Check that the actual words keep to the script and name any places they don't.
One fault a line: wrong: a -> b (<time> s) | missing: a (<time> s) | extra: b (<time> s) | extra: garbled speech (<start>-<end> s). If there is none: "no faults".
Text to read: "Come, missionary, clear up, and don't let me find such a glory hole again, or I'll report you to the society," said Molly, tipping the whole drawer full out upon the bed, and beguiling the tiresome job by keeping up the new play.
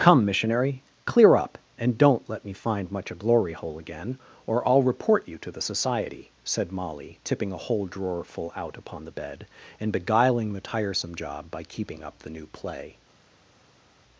wrong: such -> much (2.9 s)
wrong: the -> a (7.5 s)